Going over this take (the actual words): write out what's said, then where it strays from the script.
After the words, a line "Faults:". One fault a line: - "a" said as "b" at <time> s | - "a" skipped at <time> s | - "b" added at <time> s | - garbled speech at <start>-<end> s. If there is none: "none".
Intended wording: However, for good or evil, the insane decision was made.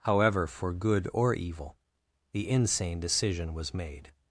However, for good or evil, the insane decision was made.
Faults:
none